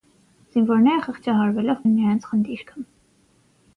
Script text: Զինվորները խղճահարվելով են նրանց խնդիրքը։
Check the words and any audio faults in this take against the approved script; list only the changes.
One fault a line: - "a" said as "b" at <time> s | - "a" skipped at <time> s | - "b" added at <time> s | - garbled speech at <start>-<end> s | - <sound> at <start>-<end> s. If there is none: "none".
none